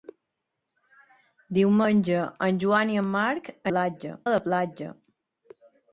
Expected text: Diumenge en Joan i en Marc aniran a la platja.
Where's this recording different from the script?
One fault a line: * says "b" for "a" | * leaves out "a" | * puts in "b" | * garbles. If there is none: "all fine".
* says "platja" for "aniran"